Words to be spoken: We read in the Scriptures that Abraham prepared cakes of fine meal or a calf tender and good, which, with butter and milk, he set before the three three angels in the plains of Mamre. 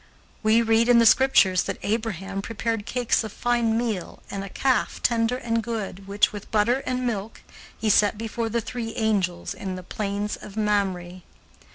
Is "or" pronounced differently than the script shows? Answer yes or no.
yes